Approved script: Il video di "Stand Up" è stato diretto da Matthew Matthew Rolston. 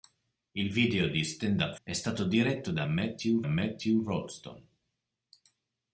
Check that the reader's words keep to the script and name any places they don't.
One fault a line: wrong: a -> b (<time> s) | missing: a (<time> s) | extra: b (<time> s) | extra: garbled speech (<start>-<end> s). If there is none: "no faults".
no faults